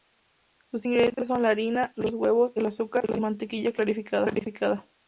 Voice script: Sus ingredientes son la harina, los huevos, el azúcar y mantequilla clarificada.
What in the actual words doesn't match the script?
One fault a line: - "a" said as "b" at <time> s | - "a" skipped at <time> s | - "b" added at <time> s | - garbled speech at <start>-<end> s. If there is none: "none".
none